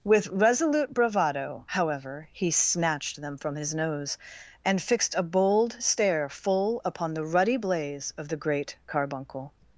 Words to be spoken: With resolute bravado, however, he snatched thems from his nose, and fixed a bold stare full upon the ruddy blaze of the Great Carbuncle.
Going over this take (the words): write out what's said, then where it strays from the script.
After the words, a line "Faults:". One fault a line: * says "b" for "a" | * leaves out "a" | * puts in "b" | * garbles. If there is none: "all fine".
With resolute bravado, however, he snatched them from his nose, and fixed a bold stare full upon the ruddy blaze of the Great Carbuncle.
Faults:
* says "them" for "thems"